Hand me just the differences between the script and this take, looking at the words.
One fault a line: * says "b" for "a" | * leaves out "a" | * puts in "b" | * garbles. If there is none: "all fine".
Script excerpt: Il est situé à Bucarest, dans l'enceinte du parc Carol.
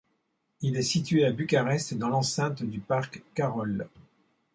all fine